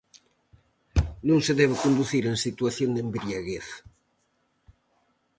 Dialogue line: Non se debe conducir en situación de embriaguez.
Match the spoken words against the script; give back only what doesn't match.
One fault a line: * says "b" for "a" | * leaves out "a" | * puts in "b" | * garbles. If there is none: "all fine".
all fine